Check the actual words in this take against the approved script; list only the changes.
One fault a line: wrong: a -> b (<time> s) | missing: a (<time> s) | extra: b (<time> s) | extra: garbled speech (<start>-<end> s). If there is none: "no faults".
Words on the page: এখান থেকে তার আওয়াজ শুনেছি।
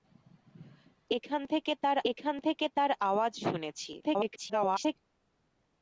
extra: এখান থেকে তার (2.1 s)
extra: garbled speech (4.0-5.0 s)